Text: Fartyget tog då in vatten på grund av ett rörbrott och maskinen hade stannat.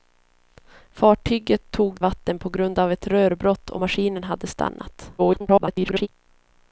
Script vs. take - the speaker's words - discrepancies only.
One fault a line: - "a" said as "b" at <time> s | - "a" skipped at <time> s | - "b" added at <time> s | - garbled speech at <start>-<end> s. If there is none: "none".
- "då in" skipped at 2.0 s
- garbled speech at 5.2-6.1 s